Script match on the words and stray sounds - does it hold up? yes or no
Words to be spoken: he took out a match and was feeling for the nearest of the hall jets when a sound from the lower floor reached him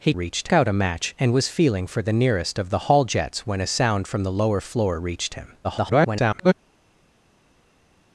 no